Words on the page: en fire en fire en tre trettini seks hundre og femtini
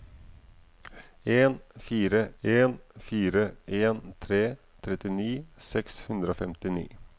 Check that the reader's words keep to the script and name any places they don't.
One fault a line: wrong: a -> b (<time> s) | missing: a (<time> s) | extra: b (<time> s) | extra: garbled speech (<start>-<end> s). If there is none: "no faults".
no faults